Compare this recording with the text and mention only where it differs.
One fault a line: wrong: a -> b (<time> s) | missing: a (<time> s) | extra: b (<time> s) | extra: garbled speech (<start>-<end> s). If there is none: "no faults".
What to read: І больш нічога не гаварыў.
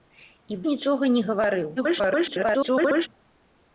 missing: больш (0.6 s)
extra: garbled speech (1.8-3.1 s)